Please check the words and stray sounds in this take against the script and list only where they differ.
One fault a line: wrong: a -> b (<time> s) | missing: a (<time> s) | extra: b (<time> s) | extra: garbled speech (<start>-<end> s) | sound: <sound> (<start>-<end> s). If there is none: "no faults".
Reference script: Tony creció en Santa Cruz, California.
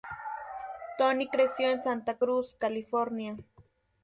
no faults